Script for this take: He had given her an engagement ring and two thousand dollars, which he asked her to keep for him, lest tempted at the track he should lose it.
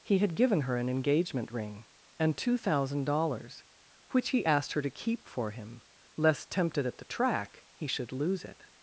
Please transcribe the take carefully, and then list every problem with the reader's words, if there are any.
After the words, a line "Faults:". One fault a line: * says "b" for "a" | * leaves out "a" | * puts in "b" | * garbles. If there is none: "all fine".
He had given her an engagement ring and two thousand dollars, which he asked her to keep for him, lest tempted at the track he should lose it.
Faults:
all fine